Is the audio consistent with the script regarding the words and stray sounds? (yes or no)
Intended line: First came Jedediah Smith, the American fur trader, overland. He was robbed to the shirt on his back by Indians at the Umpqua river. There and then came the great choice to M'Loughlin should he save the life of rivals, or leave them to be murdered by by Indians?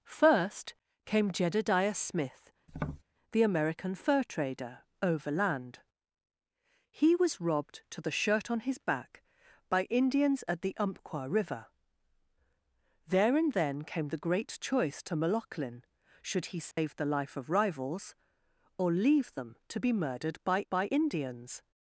no